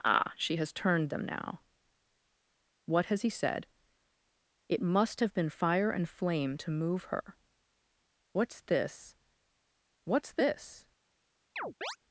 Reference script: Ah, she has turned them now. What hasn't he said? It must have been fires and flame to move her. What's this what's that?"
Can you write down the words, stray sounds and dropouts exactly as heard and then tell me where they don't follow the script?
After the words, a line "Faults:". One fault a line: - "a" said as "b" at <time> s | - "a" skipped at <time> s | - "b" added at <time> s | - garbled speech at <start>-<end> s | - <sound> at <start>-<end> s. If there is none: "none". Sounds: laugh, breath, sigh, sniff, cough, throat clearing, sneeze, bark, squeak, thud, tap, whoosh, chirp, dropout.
Ah, she has turned them now. What has he said? It must have been fire and flame to move her. What's this what's this?"
Faults:
- "hasn't" said as "has" at 3.1 s
- "fires" said as "fire" at 5.5 s
- "that" said as "this" at 10.3 s
- chirp at 11.6-12.0 s